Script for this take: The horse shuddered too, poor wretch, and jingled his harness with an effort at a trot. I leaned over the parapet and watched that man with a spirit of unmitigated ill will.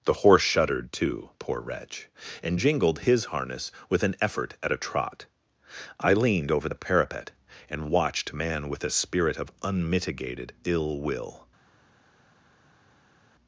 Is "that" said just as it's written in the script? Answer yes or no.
no